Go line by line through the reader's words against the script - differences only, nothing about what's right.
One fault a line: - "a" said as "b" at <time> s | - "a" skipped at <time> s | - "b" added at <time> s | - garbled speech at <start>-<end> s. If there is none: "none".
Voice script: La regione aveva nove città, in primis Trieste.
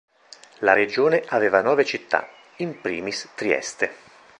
none